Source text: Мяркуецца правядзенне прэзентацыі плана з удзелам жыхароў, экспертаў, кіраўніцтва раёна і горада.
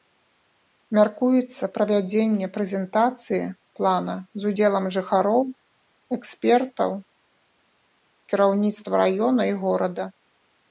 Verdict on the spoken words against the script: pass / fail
pass